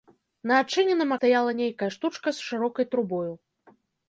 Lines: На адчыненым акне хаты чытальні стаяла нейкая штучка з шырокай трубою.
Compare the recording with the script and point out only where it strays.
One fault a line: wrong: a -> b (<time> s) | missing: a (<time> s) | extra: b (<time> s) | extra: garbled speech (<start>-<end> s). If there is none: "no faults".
missing: акне хаты чытальні (1.1 s)